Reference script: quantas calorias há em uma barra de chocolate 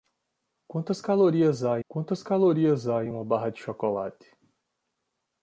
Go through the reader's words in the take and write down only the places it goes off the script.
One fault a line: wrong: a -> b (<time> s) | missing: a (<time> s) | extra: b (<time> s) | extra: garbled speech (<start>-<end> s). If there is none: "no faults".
extra: quantas calorias há (1.9 s)